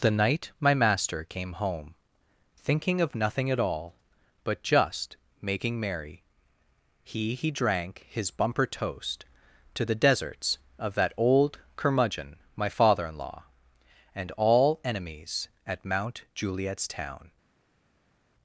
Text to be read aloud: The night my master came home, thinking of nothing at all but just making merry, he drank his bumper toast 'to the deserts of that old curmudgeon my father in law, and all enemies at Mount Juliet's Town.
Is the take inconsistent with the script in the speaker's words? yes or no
yes